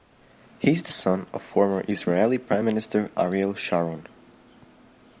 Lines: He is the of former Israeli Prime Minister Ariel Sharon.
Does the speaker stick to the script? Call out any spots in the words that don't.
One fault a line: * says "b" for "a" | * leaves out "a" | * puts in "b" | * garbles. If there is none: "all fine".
* puts in "son"